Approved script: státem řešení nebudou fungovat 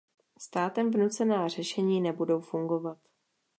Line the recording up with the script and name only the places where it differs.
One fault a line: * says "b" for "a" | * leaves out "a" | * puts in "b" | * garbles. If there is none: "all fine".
* puts in "vnucená"